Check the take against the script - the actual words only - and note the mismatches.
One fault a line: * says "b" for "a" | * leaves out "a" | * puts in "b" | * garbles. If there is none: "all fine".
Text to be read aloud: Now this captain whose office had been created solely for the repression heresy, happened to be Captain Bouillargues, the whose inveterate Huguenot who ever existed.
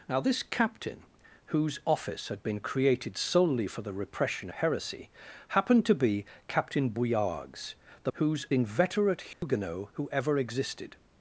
all fine